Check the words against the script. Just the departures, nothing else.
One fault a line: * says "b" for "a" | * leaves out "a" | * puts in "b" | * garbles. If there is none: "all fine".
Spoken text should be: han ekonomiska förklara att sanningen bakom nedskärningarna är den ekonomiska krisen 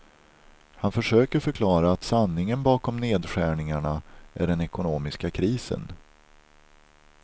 * says "försöker" for "ekonomiska"